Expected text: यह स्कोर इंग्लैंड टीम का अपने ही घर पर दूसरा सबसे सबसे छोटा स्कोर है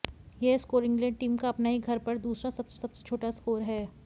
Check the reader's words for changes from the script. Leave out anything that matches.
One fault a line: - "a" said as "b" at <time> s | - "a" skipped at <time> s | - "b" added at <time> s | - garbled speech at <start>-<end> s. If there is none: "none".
none